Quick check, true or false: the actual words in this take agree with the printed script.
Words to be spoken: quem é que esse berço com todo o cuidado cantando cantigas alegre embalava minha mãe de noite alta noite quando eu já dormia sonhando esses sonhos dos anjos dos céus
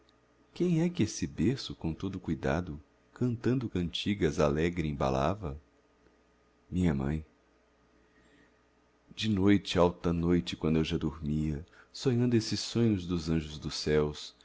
true